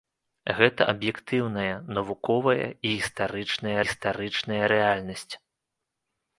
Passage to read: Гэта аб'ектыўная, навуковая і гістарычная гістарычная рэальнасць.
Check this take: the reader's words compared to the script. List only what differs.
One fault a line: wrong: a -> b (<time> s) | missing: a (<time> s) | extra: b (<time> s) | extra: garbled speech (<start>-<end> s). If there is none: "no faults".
no faults